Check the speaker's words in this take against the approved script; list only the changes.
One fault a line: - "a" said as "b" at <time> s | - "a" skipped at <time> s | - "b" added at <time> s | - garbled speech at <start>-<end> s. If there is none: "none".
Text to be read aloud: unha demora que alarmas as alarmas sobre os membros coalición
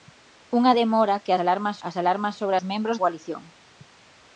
none